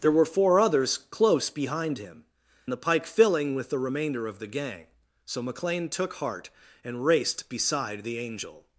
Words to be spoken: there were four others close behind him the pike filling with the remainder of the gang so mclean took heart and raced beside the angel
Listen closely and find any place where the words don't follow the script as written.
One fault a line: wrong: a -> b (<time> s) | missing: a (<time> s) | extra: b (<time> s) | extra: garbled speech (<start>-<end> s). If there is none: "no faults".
no faults